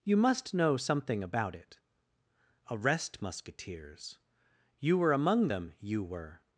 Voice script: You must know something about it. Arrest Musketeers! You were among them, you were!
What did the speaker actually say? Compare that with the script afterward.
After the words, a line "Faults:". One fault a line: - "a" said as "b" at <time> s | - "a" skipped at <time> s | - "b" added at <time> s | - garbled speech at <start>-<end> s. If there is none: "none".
You must know something about it. Arrest Musketeers! You were among them, you were!
Faults:
none